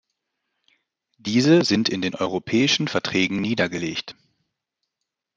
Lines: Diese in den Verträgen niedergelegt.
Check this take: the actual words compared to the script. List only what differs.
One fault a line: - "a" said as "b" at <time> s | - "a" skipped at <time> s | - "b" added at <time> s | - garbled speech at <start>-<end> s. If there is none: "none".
- "sind" added at 1.6 s
- "Europäischen" added at 2.2 s